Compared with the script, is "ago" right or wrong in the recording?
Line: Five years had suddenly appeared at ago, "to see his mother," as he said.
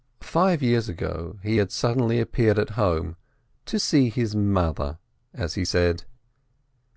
wrong